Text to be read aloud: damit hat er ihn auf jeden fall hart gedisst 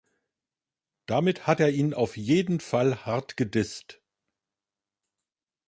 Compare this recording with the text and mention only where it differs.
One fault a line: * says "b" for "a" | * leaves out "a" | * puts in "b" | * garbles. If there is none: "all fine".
all fine